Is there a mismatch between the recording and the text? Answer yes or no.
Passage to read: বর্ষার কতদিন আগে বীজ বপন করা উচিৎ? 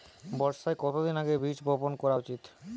no